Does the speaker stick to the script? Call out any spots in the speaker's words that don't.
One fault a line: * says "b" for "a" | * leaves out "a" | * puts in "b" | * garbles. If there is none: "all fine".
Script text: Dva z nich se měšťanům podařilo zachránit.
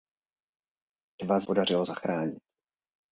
* leaves out "nich se měšťanům"